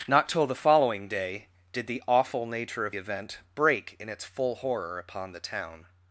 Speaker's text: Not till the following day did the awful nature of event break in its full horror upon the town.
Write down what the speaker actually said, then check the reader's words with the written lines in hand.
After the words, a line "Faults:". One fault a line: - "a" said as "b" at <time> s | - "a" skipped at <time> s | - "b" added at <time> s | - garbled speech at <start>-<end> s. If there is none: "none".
Not till the following day did the awful nature of event break in its full horror upon the town.
Faults:
none